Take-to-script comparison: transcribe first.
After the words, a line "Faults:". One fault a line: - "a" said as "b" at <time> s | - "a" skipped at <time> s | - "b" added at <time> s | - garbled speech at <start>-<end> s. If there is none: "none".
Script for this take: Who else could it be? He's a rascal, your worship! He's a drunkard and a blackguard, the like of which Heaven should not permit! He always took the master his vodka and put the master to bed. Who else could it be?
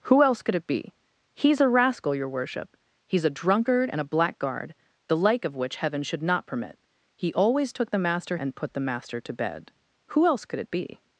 Who else could it be? He's a rascal, your worship! He's a drunkard and a blackguard, the like of which Heaven should not permit! He always took the master and put the master to bed. Who else could it be?
Faults:
- "his vodka" skipped at 8.4 s